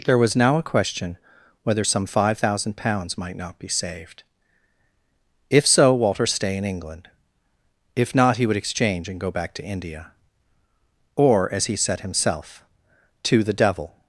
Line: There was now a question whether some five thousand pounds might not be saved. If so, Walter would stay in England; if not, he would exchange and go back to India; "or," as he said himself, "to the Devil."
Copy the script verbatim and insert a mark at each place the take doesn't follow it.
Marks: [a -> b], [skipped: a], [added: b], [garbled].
There was now a question whether some five thousand pounds might not be saved. If so, Walter [skipped: would] stay in England; if not, he would exchange and go back to India; "or," as he said himself, "to the Devil."